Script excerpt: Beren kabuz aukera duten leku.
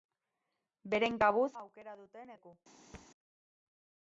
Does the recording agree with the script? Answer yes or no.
yes